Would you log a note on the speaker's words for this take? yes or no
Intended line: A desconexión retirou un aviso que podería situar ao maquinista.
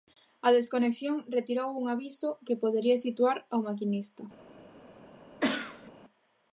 no